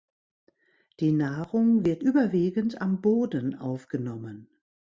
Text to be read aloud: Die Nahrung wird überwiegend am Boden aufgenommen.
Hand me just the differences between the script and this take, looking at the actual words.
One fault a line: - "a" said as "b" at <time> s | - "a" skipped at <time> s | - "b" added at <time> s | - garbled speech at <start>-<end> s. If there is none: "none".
none